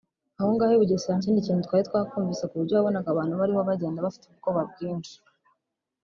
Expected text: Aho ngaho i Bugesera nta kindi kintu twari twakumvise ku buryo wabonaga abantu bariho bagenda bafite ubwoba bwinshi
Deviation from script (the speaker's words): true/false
true